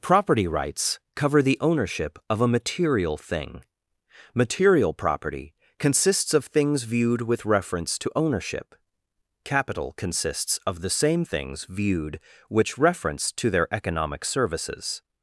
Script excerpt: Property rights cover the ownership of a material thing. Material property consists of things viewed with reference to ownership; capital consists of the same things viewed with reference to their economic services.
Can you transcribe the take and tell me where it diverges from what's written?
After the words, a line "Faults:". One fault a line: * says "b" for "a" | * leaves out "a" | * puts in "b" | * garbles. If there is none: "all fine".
Property rights cover the ownership of a material thing. Material property consists of things viewed with reference to ownership; capital consists of the same things viewed which reference to their economic services.
Faults:
* says "which" for "with"